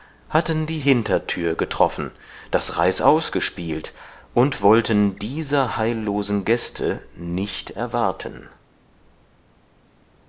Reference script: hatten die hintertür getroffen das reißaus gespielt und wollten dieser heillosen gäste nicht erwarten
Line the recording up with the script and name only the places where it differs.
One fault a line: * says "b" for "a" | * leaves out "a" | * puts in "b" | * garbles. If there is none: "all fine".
all fine